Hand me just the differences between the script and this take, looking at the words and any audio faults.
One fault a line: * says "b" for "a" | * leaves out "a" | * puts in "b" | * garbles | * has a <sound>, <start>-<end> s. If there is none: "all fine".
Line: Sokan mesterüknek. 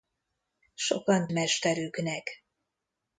all fine